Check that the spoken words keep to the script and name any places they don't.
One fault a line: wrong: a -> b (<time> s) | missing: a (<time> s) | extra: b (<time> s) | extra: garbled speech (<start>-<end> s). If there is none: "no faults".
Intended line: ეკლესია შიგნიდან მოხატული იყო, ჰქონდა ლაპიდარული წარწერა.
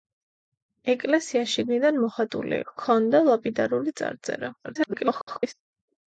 missing: იყო (2.6 s)
extra: garbled speech (4.6-5.5 s)